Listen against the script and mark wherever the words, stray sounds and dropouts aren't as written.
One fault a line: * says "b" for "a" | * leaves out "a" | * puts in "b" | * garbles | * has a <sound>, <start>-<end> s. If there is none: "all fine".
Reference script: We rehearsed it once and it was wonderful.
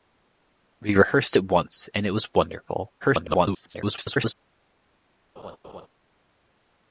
* garbles
* has a laugh, 5.4-5.9 s